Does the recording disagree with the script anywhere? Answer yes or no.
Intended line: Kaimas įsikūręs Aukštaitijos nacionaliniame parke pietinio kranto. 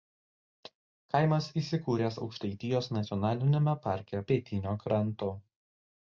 no